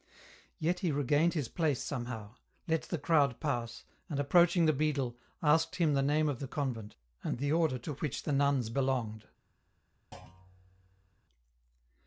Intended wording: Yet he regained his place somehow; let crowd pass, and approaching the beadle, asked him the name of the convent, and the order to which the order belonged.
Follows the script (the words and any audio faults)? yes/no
no